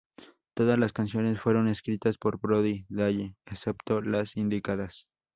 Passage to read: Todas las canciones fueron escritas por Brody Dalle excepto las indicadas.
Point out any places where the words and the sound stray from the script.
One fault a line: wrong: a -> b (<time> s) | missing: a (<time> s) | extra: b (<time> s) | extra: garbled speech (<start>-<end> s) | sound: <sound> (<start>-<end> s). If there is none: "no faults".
no faults